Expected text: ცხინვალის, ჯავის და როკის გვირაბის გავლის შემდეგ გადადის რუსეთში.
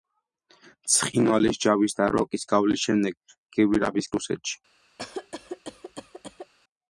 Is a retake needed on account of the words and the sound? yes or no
yes